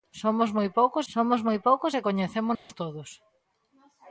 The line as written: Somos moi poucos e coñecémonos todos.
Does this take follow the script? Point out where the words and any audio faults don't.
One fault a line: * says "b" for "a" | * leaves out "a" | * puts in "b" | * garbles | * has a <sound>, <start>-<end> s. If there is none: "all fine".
* puts in "somos moi poucos"
* has a dropout, 2.5-2.7 s